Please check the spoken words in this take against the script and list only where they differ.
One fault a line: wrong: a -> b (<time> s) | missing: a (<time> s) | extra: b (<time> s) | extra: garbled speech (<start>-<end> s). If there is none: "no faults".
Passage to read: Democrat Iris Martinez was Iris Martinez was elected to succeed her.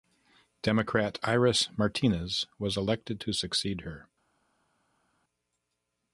missing: Iris Martinez was (2.8 s)